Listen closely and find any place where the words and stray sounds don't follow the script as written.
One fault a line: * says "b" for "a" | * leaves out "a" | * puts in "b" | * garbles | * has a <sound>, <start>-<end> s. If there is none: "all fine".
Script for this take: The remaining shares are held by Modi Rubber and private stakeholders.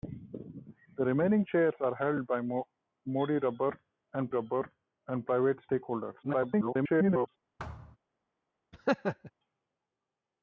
* puts in "Rubber and"
* garbles
* has a thud, 7.6-8.0 s
* has a laugh, 8.7-9.3 s